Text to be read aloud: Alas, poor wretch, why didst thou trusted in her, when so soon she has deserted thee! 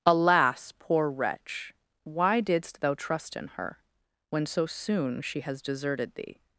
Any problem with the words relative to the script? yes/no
yes